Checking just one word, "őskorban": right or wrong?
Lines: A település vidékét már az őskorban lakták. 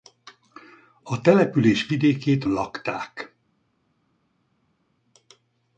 wrong